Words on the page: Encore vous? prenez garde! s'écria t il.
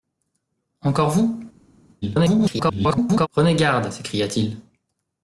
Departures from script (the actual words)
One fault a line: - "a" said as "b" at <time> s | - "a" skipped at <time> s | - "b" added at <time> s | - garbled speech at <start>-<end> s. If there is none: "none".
- garbled speech at 2.0-3.3 s